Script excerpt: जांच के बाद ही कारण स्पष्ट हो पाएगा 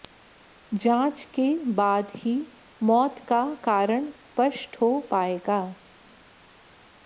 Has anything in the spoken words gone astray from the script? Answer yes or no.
yes